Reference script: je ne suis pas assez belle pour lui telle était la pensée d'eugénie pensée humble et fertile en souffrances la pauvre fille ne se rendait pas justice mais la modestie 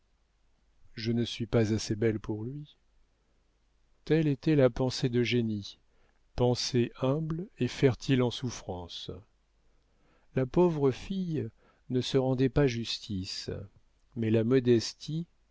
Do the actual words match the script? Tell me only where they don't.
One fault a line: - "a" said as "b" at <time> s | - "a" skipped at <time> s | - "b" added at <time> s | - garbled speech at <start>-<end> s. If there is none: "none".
none